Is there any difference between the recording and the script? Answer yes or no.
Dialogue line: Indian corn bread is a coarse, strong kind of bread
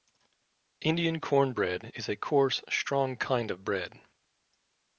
no